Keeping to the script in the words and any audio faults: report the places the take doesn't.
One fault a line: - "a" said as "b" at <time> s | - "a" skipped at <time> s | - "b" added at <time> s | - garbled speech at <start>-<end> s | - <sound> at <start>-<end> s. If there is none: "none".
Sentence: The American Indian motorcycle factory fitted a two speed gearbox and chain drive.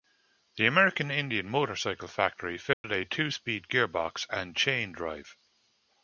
- dropout at 2.7-2.8 s